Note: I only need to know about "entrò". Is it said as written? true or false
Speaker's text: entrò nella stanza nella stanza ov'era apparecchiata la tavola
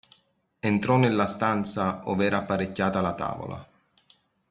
true